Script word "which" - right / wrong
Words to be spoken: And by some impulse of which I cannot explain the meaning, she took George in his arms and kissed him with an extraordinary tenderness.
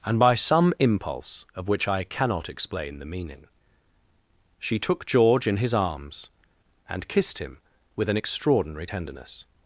right